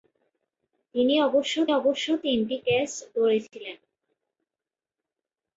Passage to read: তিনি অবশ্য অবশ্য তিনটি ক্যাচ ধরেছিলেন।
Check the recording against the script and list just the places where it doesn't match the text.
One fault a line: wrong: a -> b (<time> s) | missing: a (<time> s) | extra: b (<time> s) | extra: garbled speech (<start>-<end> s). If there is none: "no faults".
no faults